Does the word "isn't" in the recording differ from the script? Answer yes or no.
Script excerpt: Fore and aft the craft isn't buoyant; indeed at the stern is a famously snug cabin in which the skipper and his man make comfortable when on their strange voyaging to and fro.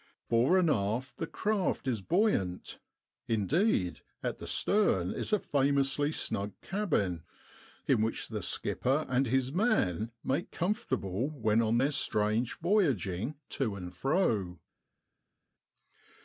yes